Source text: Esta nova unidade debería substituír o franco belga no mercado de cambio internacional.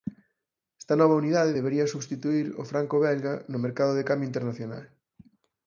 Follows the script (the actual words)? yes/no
yes